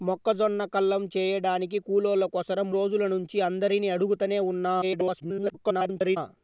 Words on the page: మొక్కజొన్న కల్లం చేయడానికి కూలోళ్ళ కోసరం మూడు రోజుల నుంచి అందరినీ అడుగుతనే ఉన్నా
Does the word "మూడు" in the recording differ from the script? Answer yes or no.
yes